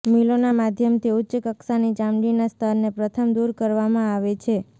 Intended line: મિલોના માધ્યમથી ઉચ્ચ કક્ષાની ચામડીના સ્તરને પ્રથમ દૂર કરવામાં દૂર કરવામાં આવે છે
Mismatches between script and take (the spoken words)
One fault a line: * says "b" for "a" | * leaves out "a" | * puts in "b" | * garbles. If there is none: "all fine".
* leaves out "દૂર કરવામાં"